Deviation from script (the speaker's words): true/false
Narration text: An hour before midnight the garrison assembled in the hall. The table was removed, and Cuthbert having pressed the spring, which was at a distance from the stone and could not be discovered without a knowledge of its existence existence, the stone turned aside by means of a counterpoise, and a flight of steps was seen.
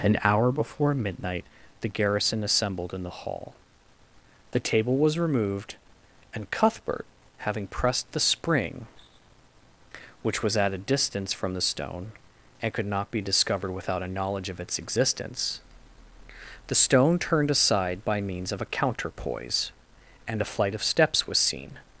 true